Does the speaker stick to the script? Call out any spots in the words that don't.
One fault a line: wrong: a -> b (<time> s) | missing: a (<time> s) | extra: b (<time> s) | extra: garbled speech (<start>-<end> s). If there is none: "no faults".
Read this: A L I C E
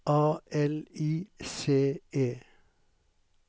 no faults